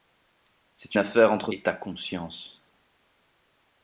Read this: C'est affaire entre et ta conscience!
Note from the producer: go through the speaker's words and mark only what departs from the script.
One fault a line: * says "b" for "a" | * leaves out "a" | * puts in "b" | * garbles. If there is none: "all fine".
all fine